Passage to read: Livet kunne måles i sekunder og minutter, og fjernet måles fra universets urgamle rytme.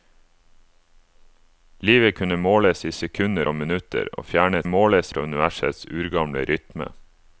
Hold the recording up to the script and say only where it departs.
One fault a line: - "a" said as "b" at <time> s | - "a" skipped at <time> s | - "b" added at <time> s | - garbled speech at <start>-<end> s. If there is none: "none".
none